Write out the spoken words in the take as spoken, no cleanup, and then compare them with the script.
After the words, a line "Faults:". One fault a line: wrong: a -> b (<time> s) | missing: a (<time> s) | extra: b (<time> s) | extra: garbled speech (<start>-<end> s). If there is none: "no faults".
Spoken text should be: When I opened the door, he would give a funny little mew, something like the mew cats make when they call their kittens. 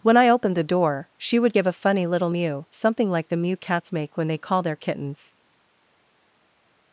When I opened the door, she would give a funny little mew, something like the mew cats make when they call their kittens.
Faults:
wrong: he -> she (1.1 s)